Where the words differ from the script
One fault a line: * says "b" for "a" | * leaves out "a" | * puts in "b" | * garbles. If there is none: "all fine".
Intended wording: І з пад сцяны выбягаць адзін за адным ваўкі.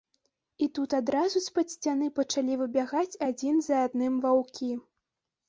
* puts in "тут адразу"
* puts in "пачалі"